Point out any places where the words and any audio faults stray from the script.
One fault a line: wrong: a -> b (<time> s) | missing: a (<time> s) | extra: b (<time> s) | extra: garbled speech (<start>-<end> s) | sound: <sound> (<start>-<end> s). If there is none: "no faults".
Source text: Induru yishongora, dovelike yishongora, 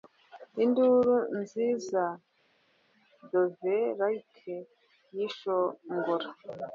wrong: yishongora -> nziza (1.4 s)